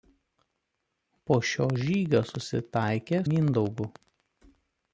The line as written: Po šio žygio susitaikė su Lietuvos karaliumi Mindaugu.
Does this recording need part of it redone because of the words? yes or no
yes